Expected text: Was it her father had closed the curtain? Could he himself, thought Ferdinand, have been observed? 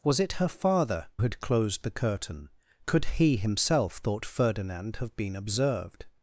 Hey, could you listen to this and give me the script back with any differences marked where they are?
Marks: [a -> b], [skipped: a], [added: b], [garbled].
Was it her father had closed the curtain? Could he himself, thought Ferdinand, have been observed?